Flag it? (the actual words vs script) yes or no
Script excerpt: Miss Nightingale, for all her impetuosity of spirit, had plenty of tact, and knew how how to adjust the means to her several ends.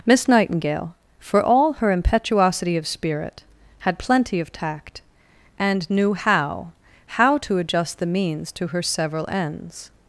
no